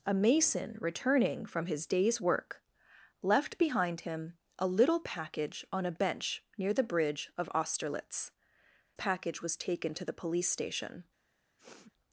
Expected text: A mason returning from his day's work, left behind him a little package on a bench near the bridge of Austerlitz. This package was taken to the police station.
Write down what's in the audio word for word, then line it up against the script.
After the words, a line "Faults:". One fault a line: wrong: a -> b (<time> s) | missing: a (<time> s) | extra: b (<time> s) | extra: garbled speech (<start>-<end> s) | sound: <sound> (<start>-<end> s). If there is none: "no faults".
A mason returning from his day's work, left behind him a little package on a bench near the bridge of Austerlitz. Package was taken to the police station.
Faults:
missing: This (8.3 s)
sound: sniff (11.6-11.9 s)